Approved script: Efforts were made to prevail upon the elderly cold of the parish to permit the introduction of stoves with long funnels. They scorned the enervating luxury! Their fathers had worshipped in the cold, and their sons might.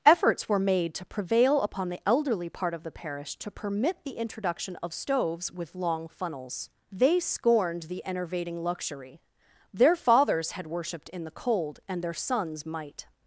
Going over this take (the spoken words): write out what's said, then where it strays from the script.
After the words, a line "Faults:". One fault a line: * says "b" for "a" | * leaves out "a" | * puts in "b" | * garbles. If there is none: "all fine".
Efforts were made to prevail upon the elderly part of the parish to permit the introduction of stoves with long funnels. They scorned the enervating luxury! Their fathers had worshipped in the cold, and their sons might.
Faults:
* says "part" for "cold"